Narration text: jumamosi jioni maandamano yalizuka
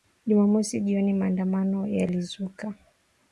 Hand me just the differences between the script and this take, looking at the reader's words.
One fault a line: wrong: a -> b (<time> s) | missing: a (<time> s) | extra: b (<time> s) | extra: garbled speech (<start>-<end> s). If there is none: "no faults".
no faults